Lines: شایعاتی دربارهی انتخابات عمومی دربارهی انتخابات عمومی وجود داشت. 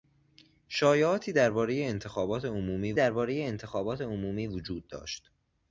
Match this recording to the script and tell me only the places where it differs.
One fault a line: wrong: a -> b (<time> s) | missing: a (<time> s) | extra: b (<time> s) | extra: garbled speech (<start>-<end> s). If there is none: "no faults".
no faults